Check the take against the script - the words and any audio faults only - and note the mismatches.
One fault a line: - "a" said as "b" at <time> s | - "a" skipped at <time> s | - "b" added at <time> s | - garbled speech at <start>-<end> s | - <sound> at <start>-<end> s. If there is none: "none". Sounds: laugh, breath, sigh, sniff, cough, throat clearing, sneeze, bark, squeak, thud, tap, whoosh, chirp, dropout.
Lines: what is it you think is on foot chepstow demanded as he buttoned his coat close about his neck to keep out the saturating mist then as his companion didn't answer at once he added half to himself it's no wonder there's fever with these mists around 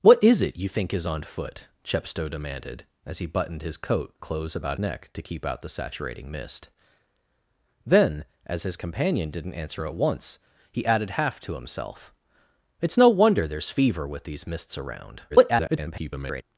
- "his" skipped at 4.8 s
- garbled speech at 15.3-16.4 s